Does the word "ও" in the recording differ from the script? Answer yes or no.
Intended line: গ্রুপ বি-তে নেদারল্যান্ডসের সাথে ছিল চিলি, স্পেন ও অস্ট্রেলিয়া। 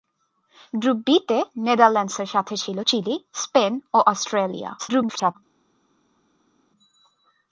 no